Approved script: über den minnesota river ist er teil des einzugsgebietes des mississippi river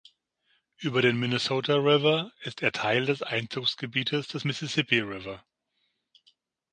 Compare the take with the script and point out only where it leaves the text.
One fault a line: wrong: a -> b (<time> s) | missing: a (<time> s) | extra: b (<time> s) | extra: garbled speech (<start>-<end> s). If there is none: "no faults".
no faults